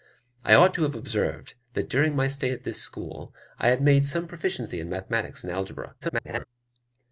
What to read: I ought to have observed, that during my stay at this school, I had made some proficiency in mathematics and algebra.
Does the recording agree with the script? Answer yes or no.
no